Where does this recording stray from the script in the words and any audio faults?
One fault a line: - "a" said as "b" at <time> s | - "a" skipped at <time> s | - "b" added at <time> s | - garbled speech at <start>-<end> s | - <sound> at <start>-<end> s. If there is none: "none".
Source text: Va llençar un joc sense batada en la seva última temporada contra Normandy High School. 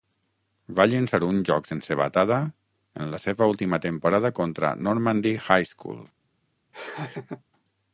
- laugh at 6.7-7.4 s